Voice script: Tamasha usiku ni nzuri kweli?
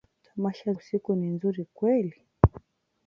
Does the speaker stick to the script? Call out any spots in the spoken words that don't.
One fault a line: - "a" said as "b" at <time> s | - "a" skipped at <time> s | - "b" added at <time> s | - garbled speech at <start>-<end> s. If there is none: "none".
none